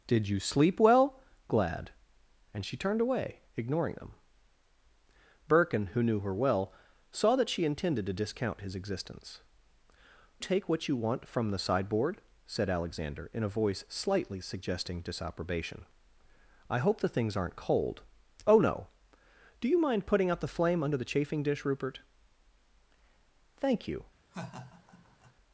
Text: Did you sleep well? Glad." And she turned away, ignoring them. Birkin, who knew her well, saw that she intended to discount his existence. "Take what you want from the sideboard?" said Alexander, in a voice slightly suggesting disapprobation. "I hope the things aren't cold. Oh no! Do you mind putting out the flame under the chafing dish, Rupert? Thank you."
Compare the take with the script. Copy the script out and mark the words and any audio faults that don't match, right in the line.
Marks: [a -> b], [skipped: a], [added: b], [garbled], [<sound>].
Did you sleep well? Glad." And she turned away, ignoring them. Birkin, who knew her well, saw that she intended to discount his existence. "Take what you want from the sideboard?" said Alexander, in a voice slightly suggesting disapprobation. "I hope the things aren't cold. Oh no! Do you mind putting out the flame under the chafing dish, Rupert? Thank you." [laugh]